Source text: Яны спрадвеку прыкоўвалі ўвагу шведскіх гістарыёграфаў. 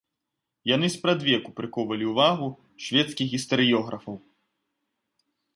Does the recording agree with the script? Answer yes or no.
yes